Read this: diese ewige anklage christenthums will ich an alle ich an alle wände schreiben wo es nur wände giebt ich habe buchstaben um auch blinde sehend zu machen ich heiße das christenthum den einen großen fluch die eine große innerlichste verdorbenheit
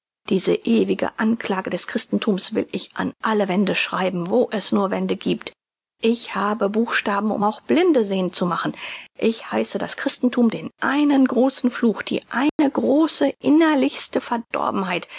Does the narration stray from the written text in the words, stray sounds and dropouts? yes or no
yes